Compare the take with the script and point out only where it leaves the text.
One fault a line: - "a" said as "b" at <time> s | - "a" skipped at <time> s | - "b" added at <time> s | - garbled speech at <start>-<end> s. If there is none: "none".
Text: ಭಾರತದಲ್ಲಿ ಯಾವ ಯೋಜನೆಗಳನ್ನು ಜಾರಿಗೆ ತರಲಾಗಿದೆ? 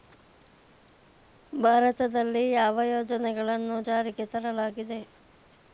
none